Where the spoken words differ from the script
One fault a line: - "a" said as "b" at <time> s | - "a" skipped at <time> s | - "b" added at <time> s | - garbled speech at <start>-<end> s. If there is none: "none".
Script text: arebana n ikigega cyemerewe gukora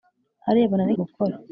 - "ikigega cyemerewe" skipped at 0.9 s